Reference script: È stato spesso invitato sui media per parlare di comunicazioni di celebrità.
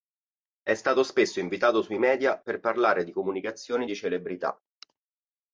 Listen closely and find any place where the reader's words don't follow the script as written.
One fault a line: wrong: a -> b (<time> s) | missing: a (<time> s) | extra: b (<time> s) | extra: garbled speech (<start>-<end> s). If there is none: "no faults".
no faults